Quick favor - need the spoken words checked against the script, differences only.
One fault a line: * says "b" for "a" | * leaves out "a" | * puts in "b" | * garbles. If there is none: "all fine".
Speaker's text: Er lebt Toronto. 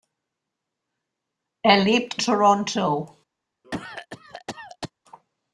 all fine